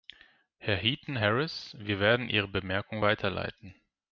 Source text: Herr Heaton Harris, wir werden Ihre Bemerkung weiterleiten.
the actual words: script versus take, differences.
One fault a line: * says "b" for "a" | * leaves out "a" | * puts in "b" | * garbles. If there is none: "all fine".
all fine